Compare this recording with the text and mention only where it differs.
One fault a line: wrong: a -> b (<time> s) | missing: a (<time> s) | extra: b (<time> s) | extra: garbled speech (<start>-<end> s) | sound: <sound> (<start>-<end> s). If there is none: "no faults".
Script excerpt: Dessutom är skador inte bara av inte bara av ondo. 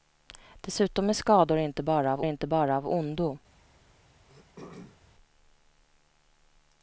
sound: throat clearing (4.3-5.0 s)